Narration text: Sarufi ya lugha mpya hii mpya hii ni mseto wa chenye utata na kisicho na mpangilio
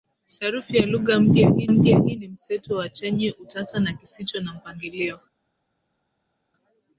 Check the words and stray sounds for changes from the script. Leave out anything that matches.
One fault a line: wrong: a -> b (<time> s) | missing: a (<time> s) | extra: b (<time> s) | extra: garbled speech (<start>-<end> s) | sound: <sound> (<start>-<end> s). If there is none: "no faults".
no faults